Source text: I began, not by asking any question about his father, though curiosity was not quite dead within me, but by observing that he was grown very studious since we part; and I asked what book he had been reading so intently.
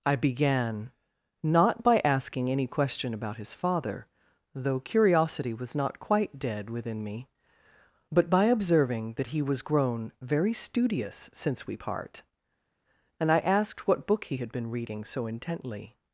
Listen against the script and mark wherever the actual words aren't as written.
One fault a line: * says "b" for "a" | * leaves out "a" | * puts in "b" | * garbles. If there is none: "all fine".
all fine